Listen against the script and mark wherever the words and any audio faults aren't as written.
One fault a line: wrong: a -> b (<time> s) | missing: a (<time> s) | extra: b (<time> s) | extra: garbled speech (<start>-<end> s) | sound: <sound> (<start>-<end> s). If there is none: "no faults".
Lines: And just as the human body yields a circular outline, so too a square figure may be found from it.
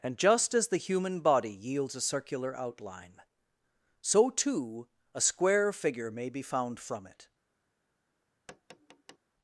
sound: tap (8.5-9.2 s)